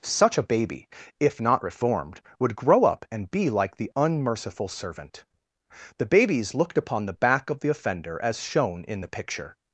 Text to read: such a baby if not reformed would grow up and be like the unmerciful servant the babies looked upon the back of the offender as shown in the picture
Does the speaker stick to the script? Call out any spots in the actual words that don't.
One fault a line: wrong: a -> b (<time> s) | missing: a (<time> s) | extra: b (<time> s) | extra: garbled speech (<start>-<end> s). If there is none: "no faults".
no faults